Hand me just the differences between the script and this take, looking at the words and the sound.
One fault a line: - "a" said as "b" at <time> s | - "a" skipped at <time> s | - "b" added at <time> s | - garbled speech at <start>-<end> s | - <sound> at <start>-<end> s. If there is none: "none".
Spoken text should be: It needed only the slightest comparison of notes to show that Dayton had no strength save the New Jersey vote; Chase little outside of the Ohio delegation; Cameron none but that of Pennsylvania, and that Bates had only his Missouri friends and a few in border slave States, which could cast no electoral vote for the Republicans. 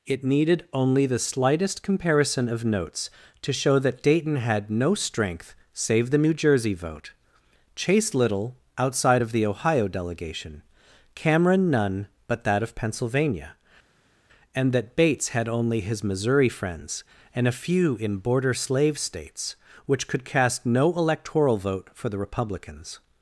none